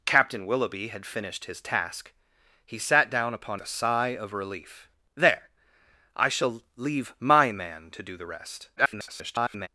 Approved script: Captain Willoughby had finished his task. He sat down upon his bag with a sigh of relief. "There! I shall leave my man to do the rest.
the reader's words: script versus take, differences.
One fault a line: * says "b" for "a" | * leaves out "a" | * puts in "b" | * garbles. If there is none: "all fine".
* leaves out "his bag with"
* garbles